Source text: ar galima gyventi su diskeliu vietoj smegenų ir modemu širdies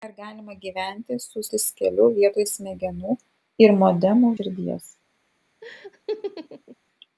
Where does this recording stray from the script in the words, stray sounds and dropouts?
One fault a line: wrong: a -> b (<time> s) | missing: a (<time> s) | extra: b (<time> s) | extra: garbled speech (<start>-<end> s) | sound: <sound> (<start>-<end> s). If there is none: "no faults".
sound: laugh (5.6-6.8 s)